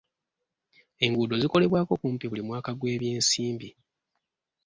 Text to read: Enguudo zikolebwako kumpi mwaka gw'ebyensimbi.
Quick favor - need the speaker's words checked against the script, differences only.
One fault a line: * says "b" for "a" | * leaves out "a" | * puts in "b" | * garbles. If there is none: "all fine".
* puts in "buli"